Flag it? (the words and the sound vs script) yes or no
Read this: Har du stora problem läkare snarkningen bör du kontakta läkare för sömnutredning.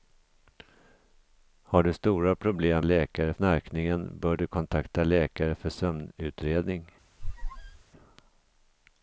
yes